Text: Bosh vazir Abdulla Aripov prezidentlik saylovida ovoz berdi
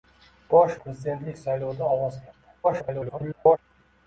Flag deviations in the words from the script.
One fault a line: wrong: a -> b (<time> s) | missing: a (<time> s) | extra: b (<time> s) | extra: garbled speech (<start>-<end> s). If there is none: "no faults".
missing: vazir Abdulla Aripov (0.8 s)
extra: garbled speech (2.6-3.6 s)